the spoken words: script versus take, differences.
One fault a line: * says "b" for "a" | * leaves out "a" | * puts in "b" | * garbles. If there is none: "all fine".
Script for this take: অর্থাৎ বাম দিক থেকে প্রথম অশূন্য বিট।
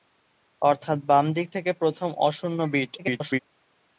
* garbles